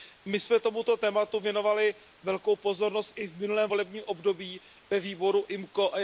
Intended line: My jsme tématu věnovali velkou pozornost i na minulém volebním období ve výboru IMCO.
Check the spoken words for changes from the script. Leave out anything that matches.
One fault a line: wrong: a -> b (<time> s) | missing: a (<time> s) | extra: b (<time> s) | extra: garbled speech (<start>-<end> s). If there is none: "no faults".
extra: tomuto (0.6 s)
wrong: na -> v (3.3 s)